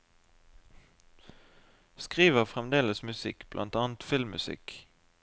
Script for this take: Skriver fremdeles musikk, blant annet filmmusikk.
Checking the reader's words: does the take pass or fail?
pass